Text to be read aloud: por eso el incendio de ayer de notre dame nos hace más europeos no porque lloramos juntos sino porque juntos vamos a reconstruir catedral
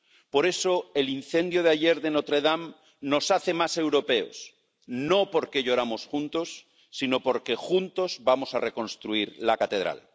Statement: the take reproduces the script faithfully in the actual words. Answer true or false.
false